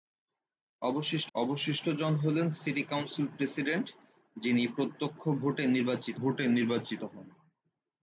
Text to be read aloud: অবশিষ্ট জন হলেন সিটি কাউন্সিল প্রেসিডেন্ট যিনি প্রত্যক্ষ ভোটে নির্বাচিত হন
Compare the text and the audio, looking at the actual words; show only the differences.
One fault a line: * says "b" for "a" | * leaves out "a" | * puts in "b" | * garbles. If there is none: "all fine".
* puts in "অবশিষ্ট"
* puts in "ভোটে নির্বাচিত"